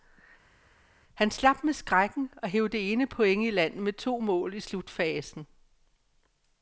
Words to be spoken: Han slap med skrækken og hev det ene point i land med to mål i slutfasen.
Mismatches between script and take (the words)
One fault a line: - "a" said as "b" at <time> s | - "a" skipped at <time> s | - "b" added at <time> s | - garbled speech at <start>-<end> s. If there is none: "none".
none